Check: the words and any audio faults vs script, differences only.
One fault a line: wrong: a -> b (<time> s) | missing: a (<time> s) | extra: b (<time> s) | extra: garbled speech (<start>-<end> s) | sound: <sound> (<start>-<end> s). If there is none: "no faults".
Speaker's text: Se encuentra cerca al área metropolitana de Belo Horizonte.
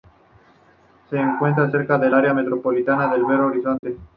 wrong: al -> del (2.0 s)
sound: dropout (3.8-3.8 s)